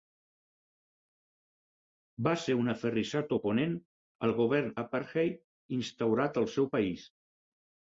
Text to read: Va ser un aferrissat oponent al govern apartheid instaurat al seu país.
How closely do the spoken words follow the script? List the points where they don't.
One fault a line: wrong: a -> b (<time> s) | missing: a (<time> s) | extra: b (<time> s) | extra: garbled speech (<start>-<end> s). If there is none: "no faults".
no faults